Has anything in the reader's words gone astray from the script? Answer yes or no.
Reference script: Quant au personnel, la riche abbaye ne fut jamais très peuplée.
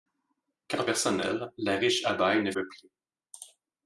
yes